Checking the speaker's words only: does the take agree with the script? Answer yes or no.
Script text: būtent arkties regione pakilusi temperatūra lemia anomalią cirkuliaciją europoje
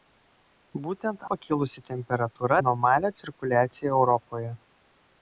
no